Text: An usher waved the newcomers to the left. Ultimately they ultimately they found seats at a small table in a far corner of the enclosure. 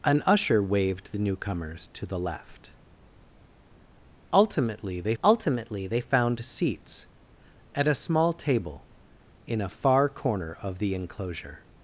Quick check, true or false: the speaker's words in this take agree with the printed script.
true